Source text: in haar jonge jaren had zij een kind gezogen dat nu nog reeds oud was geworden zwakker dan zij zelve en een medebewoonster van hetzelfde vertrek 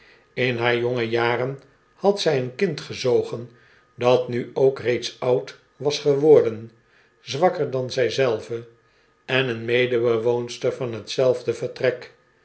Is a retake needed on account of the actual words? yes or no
yes